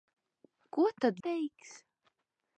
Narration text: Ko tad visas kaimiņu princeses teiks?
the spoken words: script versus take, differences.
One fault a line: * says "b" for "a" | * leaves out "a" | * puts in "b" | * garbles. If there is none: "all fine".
* leaves out "visas kaimiņu princeses"